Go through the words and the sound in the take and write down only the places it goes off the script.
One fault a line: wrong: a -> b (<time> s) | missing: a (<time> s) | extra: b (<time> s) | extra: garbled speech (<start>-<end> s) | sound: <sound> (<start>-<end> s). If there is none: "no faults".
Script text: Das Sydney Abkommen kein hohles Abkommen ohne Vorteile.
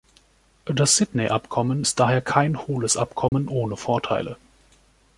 extra: ist daher (1.8 s)
sound: dropout (3.3-3.3 s)